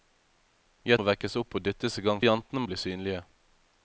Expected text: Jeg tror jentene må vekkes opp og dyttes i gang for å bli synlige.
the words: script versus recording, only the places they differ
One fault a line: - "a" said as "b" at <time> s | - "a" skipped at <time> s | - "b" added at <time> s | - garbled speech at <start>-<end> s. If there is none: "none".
- "tror jentene" skipped at 1.0 s
- "for" said as "jentene" at 2.2 s